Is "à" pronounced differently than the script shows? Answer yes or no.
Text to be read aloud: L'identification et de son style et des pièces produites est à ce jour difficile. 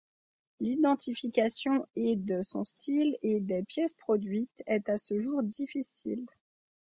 no